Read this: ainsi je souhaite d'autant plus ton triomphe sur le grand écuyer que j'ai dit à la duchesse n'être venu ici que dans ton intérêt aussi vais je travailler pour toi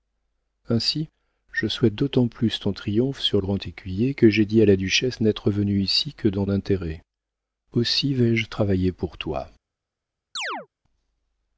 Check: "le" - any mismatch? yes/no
yes